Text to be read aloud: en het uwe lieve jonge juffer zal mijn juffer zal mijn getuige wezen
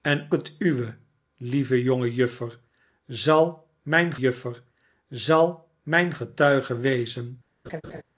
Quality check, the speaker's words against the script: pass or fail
pass